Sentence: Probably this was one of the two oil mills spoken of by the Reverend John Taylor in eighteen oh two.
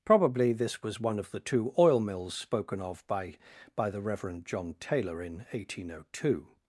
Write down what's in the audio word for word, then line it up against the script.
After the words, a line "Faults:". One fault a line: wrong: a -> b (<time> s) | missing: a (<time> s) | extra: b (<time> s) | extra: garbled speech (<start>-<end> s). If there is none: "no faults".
Probably this was one of the two oil mills spoken of by by the Reverend John Taylor in eighteen oh two.
Faults:
extra: by (3.8 s)